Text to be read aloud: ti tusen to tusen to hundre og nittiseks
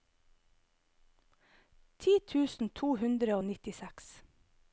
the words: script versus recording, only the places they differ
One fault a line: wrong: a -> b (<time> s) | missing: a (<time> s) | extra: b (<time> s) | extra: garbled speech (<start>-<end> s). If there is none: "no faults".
missing: tusen to (2.9 s)